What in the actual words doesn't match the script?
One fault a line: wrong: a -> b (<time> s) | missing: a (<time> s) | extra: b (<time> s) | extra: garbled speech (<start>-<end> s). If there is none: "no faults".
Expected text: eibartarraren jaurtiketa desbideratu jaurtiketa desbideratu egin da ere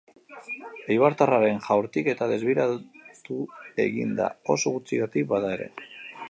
wrong: jaurtiketa desbideratu egin da -> egin da oso gutxigatik bada (3.9 s)